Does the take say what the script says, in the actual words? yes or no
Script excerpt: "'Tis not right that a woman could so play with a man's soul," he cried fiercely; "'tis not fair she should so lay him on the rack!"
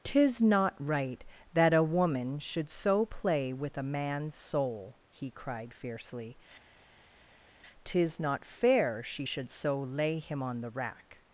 no